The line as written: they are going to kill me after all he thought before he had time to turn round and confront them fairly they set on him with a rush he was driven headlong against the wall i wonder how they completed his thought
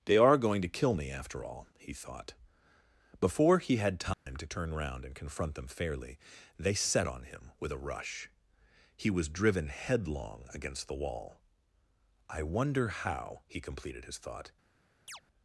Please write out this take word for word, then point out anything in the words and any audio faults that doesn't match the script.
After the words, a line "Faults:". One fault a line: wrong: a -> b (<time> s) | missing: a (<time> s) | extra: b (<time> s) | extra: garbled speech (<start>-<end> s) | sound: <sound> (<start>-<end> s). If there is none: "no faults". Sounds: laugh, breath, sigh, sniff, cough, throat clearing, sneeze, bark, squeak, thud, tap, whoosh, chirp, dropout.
they are going to kill me after all he thought before he had time to turn round and confront them fairly they set on him with a rush he was driven headlong against the wall i wonder how he completed his thought
Faults:
sound: dropout (4.1-4.3 s)
wrong: they -> he (13.5 s)
sound: chirp (15.1-15.2 s)